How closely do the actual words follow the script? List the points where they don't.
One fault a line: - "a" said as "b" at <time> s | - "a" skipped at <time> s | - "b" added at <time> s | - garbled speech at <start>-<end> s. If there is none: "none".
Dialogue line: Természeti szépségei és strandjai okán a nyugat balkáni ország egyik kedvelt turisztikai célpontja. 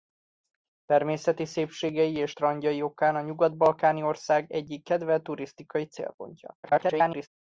- garbled speech at 6.6-7.3 s